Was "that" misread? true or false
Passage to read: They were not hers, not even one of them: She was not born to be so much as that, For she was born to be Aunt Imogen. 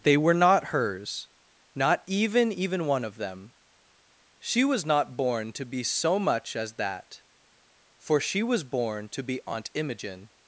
false